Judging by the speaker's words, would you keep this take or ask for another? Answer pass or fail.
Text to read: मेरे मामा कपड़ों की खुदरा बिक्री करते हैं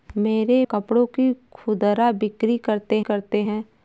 fail